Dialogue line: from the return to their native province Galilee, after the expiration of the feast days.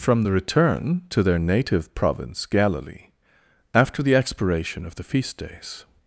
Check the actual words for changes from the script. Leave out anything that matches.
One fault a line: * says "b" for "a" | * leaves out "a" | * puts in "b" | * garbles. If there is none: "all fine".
all fine